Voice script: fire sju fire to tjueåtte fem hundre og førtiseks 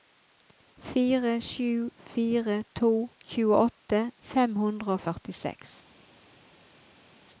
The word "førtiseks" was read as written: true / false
true